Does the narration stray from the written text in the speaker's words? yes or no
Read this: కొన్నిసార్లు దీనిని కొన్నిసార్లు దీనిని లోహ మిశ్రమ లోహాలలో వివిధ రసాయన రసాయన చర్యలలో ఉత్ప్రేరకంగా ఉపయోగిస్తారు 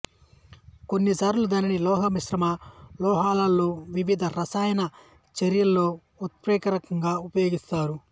yes